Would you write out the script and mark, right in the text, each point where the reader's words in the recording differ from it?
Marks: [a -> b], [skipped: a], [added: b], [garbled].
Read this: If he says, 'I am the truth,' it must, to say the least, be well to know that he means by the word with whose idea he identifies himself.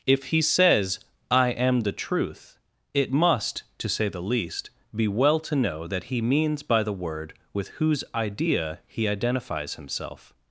If he says, 'I am the truth,' it must, to say the least, be well to know that he means by the word with whose idea he identifies himself.